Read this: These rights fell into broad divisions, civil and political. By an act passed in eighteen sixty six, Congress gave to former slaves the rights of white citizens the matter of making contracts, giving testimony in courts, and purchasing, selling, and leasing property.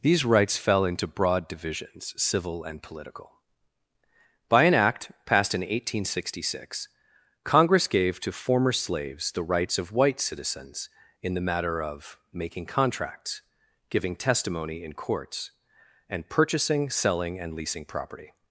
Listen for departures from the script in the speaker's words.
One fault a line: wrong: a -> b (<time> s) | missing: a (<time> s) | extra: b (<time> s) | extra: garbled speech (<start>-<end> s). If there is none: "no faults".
extra: in (11.2 s)